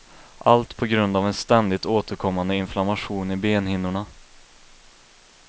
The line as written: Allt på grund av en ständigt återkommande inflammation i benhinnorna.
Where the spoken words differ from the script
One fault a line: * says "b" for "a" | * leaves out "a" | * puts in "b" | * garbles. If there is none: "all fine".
all fine